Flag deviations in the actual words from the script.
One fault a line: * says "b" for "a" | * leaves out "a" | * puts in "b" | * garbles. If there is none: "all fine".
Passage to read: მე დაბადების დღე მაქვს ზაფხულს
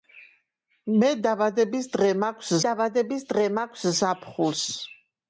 * puts in "დაბადების დღე მაქვს"